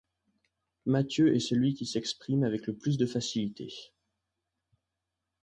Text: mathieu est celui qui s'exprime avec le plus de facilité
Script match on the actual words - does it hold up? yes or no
yes